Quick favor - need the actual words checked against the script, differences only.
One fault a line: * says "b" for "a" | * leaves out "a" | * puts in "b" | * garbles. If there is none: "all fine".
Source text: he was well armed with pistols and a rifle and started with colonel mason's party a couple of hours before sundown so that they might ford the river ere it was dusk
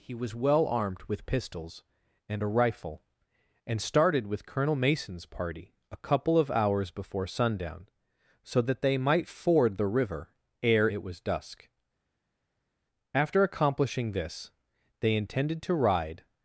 * puts in "after accomplishing this they intended to ride"